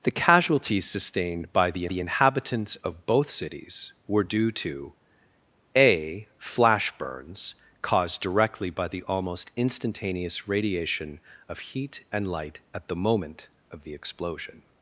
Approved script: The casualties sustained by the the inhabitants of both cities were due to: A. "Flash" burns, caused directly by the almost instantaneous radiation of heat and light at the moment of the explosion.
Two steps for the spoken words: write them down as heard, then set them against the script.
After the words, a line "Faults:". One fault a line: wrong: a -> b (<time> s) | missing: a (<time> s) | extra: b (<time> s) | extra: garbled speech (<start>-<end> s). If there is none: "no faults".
The casualties sustained by the the inhabitants of both cities were due to: A. "Flash" burns, caused directly by the almost instantaneous radiation of heat and light at the moment of the explosion.
Faults:
no faults